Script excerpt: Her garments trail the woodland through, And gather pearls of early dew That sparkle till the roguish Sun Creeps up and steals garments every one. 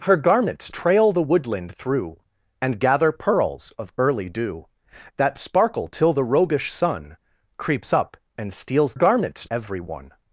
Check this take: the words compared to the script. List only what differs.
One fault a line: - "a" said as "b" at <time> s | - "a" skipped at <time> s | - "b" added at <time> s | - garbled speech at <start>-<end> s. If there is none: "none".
none